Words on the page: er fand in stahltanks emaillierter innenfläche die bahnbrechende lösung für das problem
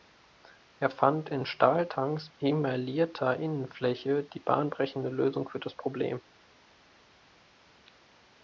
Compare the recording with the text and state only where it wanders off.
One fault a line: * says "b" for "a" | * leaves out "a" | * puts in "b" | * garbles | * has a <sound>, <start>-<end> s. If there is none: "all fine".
all fine